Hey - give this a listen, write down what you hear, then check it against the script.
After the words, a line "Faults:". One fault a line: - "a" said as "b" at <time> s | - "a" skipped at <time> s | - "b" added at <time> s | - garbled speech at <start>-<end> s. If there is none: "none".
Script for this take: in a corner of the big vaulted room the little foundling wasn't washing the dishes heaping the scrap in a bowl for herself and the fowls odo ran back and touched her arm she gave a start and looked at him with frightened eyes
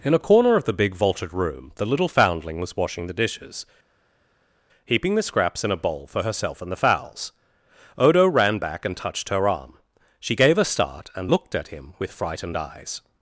in a corner of the big vaulted room the little foundling was washing the dishes heaping the scraps in a bowl for herself and the fowls odo ran back and touched her arm she gave a start and looked at him with frightened eyes
Faults:
- "wasn't" said as "was" at 2.6 s
- "scrap" said as "scraps" at 5.2 s